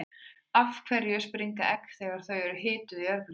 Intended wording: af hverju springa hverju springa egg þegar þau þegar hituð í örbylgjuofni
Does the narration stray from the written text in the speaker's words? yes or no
yes